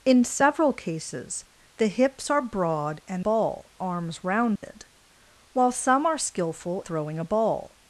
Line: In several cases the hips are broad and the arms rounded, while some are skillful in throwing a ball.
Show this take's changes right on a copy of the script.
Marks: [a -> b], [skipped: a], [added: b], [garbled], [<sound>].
In several cases the hips are broad and [the -> ball] arms rounded, [dropout] while some are skillful [skipped: in] throwing a ball.